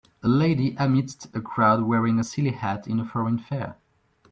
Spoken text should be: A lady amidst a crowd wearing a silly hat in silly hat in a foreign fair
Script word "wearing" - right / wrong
right